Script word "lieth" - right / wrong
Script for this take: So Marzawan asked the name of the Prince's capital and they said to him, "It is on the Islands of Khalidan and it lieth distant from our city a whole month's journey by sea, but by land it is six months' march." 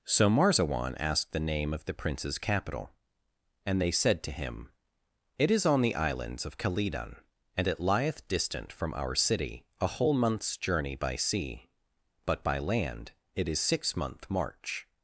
right